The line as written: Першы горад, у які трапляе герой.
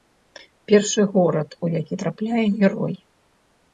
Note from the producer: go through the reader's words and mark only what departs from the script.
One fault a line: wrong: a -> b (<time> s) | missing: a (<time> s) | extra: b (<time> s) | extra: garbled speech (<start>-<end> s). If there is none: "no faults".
no faults